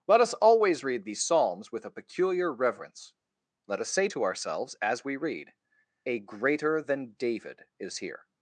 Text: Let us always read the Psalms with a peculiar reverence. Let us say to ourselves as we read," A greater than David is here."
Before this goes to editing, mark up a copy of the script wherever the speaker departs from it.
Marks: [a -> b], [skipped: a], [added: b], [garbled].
Let us always read [the -> these] Psalms with a peculiar reverence. Let us say to ourselves as we read," A greater than David is here."